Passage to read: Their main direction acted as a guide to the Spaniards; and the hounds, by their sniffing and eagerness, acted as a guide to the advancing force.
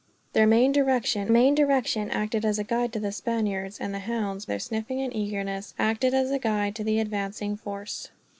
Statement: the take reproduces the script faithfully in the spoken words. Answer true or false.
false